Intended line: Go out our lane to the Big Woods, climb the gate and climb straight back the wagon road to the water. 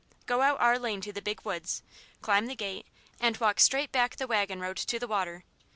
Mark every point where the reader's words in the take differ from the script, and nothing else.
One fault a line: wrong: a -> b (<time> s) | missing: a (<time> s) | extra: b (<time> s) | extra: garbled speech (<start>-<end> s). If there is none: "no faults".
wrong: climb -> walk (3.4 s)